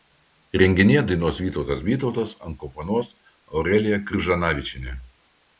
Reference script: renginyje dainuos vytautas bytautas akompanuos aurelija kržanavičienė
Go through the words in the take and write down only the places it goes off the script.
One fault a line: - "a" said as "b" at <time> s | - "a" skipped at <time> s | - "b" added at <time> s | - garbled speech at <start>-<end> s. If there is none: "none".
none